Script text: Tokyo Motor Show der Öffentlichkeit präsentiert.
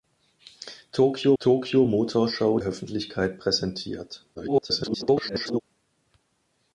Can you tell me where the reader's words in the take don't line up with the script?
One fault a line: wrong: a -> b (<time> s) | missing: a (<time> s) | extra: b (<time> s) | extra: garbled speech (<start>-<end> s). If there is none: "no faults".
extra: tokyo (1.4 s)
missing: der (2.6 s)
extra: garbled speech (4.3-5.6 s)